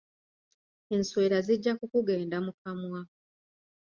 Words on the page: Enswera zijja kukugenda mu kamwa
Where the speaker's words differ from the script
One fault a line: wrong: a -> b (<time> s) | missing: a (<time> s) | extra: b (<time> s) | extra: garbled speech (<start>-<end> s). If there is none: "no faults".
no faults